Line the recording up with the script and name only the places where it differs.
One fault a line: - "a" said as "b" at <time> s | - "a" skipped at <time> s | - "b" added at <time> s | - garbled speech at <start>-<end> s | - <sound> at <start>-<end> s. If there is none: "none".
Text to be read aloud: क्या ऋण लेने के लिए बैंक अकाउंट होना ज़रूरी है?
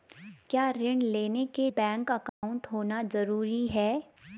- "लिए" skipped at 1.7 s
- dropout at 2.3-2.4 s